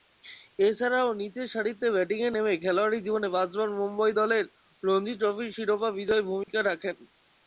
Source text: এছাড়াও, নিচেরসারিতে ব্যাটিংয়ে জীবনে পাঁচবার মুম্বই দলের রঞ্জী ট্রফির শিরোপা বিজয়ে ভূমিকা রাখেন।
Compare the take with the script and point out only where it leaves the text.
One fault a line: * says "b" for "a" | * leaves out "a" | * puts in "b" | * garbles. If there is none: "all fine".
* puts in "নেমে খেলোয়াড়ী"